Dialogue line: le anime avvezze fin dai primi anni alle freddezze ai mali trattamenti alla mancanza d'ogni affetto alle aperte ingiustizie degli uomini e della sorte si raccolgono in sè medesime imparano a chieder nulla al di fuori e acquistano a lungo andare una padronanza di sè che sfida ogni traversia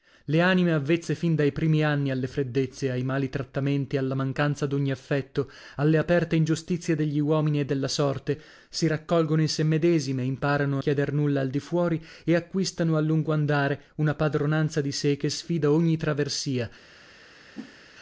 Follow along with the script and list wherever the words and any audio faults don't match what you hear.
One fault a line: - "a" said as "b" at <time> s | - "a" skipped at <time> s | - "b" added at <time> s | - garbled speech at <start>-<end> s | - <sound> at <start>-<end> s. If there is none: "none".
- whoosh at 17.5-17.8 s